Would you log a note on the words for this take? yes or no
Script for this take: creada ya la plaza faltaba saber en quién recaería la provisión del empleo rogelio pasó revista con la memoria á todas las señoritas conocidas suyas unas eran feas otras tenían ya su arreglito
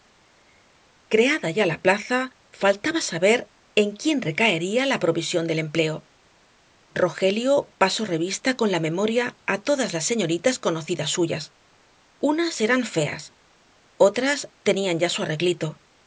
no